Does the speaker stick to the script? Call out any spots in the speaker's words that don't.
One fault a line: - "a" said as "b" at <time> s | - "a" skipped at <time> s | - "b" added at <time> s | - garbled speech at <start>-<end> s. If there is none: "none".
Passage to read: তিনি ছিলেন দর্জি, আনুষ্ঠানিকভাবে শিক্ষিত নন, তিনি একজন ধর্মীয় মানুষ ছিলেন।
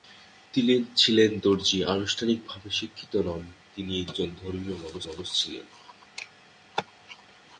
- "মানুষ" added at 5.0 s